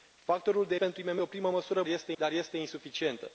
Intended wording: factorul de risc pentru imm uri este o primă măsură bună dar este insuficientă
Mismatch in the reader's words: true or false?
true